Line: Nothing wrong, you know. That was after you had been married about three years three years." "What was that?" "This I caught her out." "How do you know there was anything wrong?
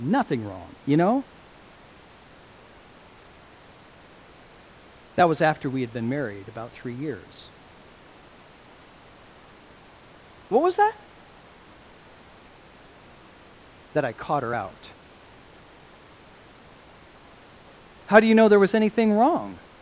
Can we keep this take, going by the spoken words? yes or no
no